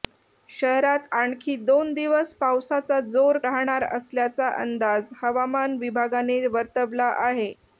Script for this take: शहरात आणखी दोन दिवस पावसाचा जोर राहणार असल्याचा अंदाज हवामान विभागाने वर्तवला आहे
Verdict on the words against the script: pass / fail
pass